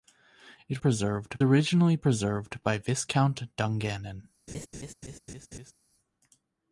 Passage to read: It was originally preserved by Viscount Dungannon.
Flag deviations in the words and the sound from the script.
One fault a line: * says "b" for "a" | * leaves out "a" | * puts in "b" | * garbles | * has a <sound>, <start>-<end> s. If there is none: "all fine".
* says "preserved" for "was"
* has a laugh, 4.5-5.7 s